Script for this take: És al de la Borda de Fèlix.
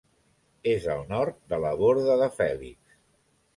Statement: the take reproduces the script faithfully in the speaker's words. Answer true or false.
false